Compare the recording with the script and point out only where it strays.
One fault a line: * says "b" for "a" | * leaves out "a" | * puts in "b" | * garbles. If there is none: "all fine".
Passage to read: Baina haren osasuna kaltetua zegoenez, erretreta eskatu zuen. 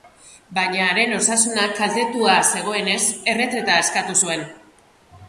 all fine